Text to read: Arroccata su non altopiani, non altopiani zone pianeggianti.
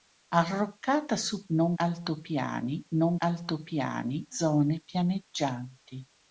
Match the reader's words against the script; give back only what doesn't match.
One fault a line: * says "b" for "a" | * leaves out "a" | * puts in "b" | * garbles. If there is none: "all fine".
all fine